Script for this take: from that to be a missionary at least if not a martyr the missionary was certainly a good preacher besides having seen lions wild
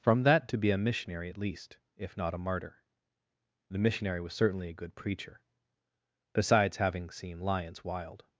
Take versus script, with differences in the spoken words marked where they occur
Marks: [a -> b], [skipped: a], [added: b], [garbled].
from that to be a missionary at least if not a martyr the missionary was certainly a good preacher besides having seen lions wild